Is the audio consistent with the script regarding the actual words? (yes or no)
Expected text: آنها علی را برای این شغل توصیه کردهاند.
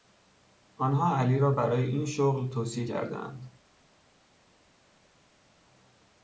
yes